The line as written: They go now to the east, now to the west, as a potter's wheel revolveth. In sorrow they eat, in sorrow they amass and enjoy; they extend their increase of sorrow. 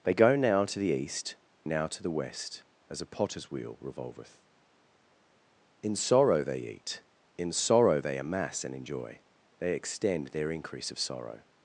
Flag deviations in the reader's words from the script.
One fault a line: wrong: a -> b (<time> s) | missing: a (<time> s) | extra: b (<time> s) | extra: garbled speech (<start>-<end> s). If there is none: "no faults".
no faults